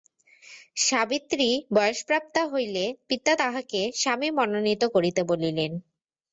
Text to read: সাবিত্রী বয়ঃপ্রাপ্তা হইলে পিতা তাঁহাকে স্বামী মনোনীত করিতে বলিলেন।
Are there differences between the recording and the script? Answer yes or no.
no